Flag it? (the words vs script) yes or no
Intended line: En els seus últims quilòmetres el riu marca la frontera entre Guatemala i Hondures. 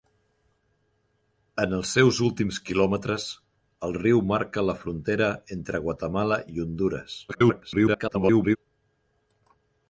yes